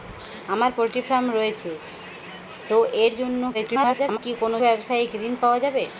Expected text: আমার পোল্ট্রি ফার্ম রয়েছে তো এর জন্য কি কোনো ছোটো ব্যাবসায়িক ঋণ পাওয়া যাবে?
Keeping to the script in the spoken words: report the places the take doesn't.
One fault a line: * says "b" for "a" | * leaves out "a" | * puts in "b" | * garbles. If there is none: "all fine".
* garbles
* leaves out "ছোটো"